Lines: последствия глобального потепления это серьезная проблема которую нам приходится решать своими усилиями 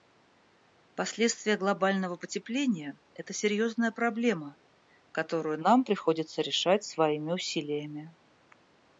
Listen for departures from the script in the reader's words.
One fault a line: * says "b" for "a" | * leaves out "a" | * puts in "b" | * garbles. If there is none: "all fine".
all fine